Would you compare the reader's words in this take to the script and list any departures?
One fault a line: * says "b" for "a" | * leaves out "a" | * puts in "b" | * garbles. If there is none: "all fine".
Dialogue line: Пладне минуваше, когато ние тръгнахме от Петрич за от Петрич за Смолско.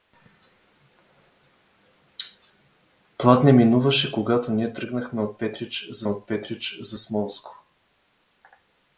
all fine